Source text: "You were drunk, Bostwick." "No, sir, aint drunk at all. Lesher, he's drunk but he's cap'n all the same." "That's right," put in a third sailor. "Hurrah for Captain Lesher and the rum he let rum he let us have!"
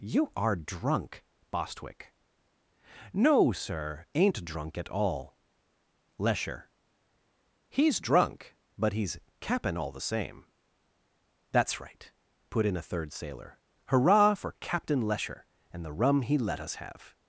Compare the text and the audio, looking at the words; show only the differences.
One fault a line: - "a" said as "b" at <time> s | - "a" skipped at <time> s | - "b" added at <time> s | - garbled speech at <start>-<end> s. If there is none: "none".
- "were" said as "are" at 0.3 s
- "rum he let" skipped at 16.6 s